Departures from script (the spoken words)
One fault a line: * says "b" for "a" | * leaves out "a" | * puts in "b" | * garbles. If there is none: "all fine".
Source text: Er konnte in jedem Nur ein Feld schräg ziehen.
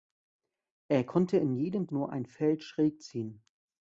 all fine